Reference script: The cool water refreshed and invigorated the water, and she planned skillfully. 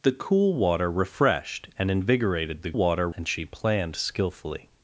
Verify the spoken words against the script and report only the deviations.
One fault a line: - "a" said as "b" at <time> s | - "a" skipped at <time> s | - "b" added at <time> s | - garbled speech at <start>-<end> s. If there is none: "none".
none